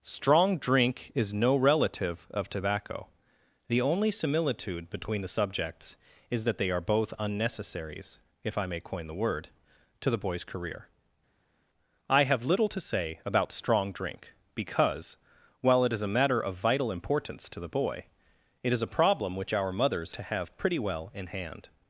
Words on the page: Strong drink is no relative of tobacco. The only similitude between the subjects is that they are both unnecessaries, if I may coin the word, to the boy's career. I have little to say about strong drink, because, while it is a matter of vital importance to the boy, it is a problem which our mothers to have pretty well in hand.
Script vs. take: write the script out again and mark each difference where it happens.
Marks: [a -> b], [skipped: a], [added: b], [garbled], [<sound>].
Strong drink is no relative of tobacco. The only similitude between the subjects is that they are both unnecessaries, if I may coin the word, to the boy's career. I have little to say about strong drink, because, while it is a matter of vital importance to the boy, it is a problem which our mothers to have pretty well in hand.